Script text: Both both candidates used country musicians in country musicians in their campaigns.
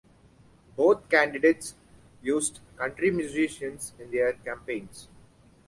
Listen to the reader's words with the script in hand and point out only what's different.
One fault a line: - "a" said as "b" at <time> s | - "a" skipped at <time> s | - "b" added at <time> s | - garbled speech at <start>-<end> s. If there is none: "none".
- "both" skipped at 1.1 s
- "country musicians in" skipped at 4.1 s